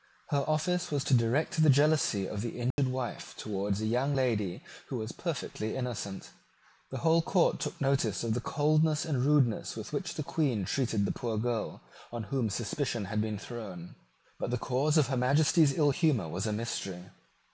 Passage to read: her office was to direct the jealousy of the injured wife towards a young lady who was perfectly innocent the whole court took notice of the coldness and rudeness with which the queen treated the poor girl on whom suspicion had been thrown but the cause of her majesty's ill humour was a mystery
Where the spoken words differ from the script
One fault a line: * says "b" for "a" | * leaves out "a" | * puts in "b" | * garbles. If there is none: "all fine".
all fine